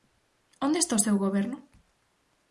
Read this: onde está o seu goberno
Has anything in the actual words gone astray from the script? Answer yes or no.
no